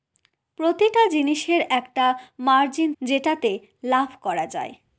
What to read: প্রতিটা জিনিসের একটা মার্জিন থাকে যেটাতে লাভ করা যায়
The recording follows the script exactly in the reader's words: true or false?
false